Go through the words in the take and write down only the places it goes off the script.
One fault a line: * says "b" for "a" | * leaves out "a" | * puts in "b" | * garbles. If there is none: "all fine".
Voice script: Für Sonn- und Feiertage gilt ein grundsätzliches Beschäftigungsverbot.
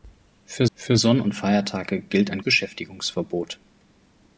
* puts in "für"
* leaves out "grundsätzliches"